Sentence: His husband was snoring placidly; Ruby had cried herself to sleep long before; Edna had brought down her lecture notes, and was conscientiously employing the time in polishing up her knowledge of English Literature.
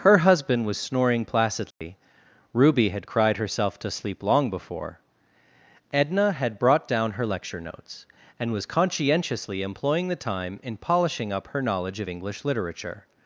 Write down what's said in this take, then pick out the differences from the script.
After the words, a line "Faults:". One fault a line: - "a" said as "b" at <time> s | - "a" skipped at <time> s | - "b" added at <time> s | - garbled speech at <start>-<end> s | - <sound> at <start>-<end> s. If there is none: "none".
Her husband was snoring placidly; Ruby had cried herself to sleep long before; Edna had brought down her lecture notes, and was conscientiously employing the time in polishing up her knowledge of English Literature.
Faults:
- "His" said as "Her" at 0.0 s
- dropout at 1.7-1.8 s